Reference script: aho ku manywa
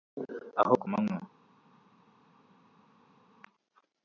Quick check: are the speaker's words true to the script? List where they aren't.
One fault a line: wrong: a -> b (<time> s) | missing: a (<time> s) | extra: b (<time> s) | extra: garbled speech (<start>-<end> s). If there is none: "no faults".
no faults